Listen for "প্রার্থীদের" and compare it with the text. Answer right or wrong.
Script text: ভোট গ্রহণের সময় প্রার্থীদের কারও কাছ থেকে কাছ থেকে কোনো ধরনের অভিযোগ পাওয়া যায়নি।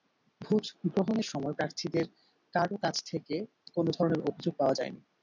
right